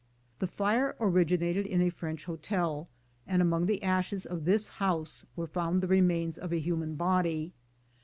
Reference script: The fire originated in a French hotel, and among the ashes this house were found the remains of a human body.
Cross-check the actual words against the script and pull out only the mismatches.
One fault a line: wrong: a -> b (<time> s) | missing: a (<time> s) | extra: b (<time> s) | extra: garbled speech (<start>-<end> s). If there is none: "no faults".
extra: of (4.2 s)